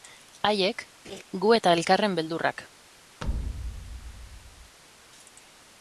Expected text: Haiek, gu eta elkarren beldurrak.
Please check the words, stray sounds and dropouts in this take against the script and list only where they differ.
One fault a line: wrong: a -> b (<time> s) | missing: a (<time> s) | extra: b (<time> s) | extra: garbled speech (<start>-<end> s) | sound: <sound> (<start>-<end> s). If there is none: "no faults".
sound: laugh (1.0-1.2 s)
sound: thud (3.2-4.8 s)